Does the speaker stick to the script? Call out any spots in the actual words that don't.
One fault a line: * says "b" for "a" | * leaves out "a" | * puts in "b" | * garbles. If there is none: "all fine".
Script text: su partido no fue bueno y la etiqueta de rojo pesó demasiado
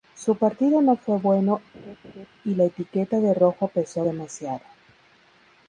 all fine